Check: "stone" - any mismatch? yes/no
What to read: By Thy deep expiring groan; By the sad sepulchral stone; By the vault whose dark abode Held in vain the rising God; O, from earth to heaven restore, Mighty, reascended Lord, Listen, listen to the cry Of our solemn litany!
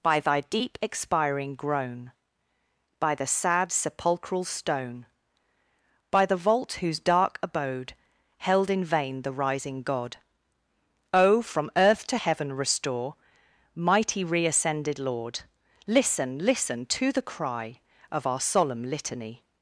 no